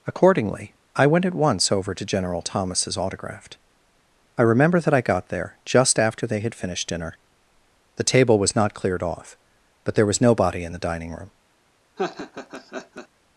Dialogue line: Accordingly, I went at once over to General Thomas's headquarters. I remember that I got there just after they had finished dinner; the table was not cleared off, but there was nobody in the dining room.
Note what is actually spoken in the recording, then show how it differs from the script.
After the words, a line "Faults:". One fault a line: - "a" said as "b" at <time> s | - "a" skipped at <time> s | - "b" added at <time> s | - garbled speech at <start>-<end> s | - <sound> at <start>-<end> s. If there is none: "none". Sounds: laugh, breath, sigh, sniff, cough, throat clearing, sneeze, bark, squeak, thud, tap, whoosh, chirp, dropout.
Accordingly, I went at once over to General Thomas's autographed. I remember that I got there just after they had finished dinner; the table was not cleared off, but there was nobody in the dining room.
Faults:
- "headquarters" said as "autographed" at 3.0 s
- laugh at 12.0-13.1 s